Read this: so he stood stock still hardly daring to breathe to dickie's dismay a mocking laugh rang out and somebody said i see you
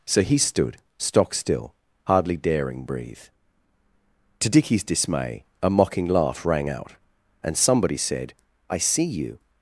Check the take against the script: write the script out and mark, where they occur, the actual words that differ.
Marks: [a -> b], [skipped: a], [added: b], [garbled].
so he stood stock still hardly daring [skipped: to] breathe to dickie's dismay a mocking laugh rang out and somebody said i see you